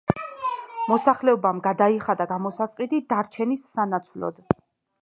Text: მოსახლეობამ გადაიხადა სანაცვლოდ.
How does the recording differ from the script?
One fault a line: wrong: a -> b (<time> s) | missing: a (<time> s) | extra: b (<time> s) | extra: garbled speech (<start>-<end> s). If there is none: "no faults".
extra: გამოსასყიდი დარჩენის (2.3 s)